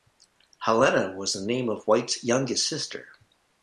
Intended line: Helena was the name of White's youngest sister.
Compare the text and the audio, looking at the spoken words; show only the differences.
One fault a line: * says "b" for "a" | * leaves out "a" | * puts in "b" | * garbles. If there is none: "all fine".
all fine